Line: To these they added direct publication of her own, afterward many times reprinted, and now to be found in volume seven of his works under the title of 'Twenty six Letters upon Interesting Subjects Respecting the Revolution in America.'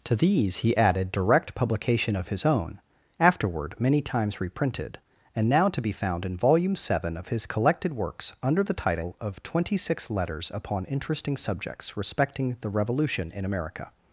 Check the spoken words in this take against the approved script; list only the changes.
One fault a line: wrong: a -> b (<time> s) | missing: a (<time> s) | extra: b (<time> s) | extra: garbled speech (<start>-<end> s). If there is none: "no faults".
wrong: they -> he (0.6 s)
wrong: her -> his (2.3 s)
extra: collected (7.4 s)